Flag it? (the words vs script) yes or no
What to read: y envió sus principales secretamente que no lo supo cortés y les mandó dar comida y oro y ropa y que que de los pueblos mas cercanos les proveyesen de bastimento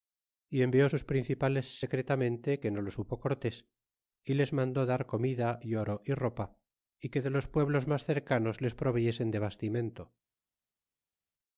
yes